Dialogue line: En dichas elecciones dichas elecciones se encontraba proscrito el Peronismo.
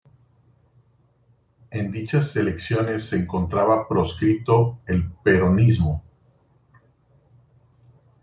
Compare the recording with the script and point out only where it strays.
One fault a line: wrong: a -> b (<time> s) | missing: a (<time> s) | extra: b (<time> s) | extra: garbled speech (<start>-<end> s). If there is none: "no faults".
missing: dichas elecciones (3.0 s)